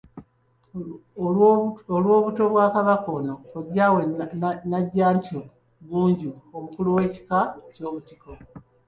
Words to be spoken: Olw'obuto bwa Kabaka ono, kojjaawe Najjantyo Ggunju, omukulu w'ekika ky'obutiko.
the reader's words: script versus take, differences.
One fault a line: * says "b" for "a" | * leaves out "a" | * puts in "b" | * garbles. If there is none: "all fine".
all fine